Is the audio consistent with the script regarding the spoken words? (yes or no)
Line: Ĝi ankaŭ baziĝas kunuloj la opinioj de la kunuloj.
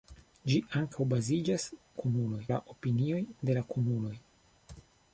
yes